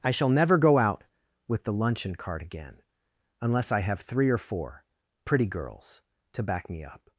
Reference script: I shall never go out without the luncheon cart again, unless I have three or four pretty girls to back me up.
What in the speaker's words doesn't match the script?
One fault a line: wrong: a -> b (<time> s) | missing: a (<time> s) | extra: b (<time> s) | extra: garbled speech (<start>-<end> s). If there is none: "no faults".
wrong: without -> with (1.5 s)